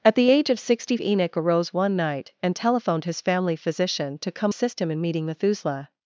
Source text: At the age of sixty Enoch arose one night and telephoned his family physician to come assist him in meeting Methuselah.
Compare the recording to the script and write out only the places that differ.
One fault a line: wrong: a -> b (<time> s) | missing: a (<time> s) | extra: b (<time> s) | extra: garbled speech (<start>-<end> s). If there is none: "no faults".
no faults